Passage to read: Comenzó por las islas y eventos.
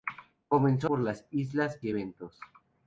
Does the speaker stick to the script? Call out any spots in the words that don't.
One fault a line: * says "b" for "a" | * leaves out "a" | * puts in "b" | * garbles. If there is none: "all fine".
all fine